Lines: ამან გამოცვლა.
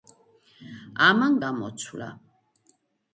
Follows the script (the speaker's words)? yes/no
yes